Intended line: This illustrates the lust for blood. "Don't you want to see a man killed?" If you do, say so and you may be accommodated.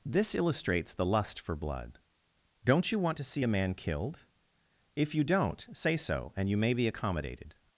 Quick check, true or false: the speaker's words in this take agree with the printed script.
false